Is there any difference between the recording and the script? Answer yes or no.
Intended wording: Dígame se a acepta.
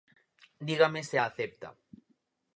no